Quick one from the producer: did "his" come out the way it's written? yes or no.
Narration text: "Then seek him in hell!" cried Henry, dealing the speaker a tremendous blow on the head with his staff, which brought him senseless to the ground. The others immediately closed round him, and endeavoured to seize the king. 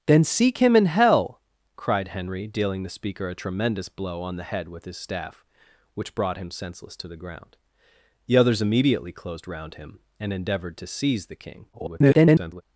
yes